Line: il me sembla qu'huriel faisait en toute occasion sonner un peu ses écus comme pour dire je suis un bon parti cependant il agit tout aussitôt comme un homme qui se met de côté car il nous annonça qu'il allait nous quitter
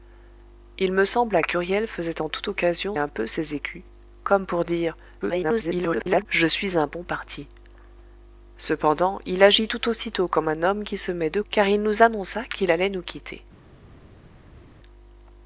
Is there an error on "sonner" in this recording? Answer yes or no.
yes